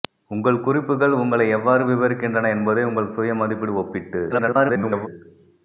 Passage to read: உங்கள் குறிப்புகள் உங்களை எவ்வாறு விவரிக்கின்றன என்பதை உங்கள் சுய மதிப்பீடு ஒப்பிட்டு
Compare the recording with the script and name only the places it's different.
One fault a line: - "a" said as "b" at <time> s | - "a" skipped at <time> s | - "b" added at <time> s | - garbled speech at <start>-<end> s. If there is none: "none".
- garbled speech at 4.3-5.1 s